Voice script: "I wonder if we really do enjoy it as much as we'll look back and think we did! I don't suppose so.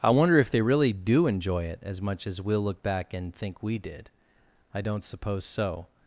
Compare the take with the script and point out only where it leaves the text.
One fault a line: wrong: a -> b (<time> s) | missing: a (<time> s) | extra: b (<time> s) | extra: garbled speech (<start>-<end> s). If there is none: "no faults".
wrong: we -> they (0.5 s)